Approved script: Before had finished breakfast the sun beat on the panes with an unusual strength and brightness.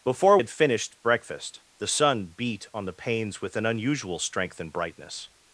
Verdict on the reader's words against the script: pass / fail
pass